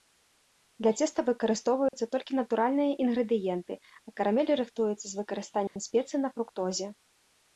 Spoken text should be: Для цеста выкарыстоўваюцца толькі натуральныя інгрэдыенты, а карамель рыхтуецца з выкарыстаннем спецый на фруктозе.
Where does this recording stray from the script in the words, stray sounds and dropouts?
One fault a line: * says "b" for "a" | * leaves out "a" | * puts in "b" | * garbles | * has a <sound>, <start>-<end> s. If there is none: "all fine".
* has a dropout, 1.9-1.9 s
* has a dropout, 5.7-5.8 s